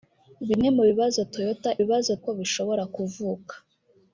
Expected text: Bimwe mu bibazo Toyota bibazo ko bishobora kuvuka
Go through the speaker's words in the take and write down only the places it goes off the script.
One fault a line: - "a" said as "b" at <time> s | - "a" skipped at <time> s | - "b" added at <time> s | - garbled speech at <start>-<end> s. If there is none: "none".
none